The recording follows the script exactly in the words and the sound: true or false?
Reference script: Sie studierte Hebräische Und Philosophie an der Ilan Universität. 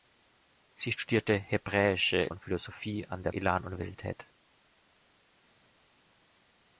true